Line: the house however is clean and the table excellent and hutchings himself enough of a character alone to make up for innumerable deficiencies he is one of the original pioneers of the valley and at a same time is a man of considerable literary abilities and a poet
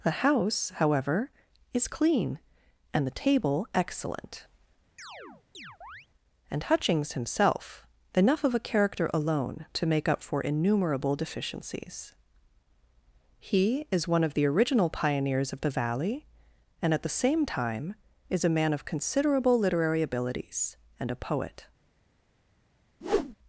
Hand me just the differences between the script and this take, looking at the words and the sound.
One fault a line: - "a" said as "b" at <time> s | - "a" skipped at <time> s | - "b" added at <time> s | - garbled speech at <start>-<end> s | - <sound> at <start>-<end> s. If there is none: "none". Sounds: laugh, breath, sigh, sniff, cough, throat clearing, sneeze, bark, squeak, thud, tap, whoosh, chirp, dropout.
- chirp at 5.0-6.1 s
- "a" said as "the" at 17.0 s
- whoosh at 23.0-23.4 s